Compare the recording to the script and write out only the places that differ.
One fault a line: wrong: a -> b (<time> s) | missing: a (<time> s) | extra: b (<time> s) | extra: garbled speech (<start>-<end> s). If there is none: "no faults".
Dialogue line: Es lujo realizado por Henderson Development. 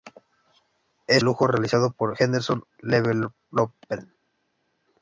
no faults